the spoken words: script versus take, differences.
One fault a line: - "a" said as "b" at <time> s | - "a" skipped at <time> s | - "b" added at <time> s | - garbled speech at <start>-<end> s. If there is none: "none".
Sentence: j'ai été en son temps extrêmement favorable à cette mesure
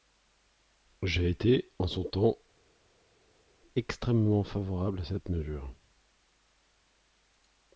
none